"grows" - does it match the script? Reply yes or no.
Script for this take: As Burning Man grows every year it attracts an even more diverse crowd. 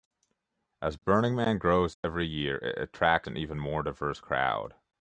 yes